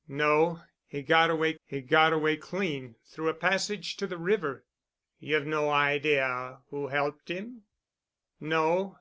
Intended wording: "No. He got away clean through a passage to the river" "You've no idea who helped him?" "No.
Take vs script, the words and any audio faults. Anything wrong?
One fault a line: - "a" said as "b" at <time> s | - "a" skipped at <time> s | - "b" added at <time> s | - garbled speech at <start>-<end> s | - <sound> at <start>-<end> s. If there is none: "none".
- "he got away" added at 1.7 s